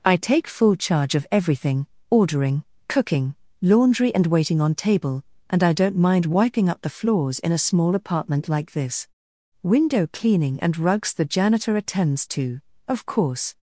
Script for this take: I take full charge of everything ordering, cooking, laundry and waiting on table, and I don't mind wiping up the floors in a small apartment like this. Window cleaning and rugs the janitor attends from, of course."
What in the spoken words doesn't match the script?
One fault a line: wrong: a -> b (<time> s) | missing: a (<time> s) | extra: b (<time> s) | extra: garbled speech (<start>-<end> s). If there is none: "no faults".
wrong: from -> to (12.3 s)